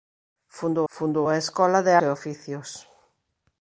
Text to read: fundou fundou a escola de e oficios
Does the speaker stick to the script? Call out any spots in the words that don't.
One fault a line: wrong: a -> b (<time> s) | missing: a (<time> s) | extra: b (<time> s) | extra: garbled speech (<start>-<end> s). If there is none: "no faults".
no faults